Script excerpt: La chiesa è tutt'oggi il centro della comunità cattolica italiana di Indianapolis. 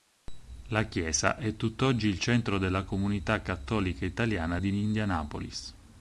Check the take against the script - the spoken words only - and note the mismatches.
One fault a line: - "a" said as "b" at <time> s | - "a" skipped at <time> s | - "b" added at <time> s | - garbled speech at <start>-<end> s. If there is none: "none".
none